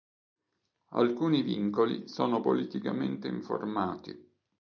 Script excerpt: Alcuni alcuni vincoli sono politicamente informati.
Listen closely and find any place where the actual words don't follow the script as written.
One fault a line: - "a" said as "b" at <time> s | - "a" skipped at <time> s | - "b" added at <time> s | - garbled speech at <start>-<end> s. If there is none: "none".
- "alcuni" skipped at 1.4 s